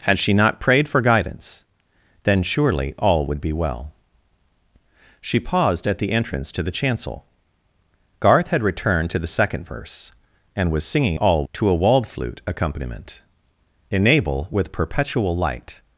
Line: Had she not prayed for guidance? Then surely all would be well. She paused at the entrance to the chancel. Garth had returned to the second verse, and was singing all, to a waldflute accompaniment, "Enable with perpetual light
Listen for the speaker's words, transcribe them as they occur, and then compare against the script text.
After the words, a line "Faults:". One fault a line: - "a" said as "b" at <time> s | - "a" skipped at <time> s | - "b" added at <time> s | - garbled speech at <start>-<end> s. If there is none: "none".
Had she not prayed for guidance? Then surely all would be well. She paused at the entrance to the chancel. Garth had returned to the second verse, and was singing all, to a waldflute accompaniment, "Enable with perpetual light
Faults:
none